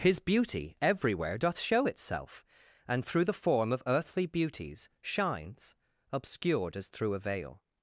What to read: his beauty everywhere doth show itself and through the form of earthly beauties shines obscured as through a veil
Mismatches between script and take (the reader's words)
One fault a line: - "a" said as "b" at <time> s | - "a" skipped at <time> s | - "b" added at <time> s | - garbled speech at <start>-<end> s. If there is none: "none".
none